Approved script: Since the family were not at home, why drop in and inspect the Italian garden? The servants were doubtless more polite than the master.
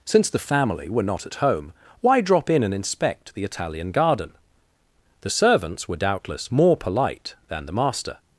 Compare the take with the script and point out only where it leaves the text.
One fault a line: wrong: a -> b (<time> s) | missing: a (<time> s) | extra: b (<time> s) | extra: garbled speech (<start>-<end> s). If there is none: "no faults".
no faults